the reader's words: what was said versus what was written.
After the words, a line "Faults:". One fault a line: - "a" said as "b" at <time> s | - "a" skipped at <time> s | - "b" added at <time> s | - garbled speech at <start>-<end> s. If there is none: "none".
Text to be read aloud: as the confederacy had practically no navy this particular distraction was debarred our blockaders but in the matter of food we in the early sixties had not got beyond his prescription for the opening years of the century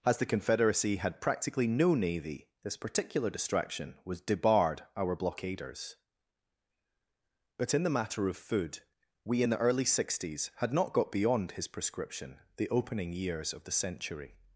as the confederacy had practically no navy this particular distraction was debarred our blockaders but in the matter of food we in the early sixties had not got beyond his prescription the opening years of the century
Faults:
- "for" skipped at 12.4 s